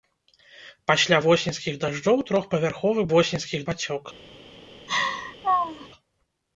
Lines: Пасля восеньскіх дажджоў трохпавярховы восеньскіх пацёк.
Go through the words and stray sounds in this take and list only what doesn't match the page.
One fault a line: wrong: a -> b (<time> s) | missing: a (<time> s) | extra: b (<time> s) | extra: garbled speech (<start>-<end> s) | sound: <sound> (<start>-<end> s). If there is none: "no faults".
sound: laugh (4.9-5.9 s)